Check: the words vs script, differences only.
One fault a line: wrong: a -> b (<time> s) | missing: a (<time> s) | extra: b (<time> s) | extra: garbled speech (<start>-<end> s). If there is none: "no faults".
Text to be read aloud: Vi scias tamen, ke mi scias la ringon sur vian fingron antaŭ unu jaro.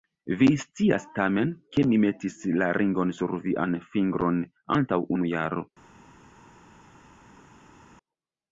wrong: scias -> metis (2.1 s)